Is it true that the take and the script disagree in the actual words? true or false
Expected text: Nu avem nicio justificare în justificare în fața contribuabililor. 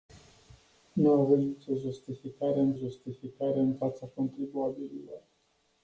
false